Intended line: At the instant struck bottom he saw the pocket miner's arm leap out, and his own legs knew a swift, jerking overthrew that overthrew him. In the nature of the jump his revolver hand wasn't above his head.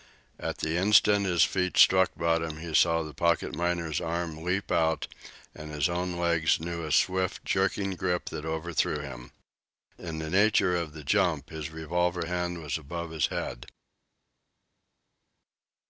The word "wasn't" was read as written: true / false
false